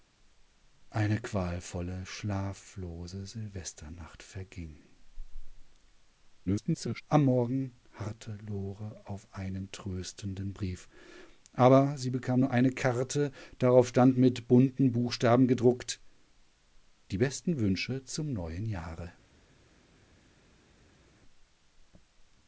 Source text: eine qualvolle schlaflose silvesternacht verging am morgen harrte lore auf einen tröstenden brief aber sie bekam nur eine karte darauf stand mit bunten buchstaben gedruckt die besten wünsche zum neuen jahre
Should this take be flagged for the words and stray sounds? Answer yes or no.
yes